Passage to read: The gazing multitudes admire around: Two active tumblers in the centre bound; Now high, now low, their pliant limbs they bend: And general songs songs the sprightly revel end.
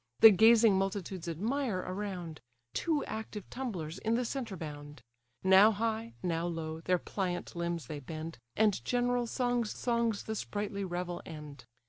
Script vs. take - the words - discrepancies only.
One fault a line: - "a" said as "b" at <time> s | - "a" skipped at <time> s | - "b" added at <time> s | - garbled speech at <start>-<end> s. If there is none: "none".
none